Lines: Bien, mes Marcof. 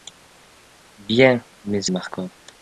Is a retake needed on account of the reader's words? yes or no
no